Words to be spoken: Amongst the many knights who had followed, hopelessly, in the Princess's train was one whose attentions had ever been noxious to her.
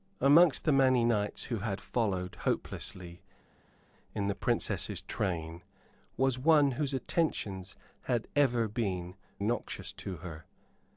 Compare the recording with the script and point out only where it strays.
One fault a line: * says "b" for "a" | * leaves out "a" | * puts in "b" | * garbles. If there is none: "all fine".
all fine